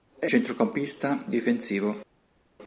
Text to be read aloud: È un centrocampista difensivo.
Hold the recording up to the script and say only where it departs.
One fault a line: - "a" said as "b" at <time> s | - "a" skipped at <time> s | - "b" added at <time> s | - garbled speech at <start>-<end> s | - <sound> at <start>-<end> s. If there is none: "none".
- "un" skipped at 0.3 s